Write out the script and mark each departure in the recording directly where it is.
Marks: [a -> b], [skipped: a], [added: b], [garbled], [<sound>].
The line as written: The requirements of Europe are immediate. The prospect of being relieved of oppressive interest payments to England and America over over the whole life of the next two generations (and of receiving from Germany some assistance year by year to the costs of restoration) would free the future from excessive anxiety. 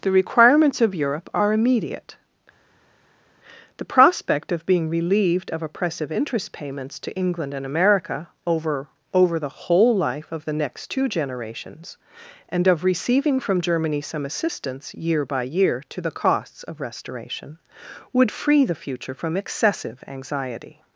The requirements of Europe are immediate. The prospect of being relieved of oppressive interest payments to England and America over over the whole life of the next two generations (and of receiving from Germany some assistance year by year to the costs of restoration) would free the future from excessive anxiety.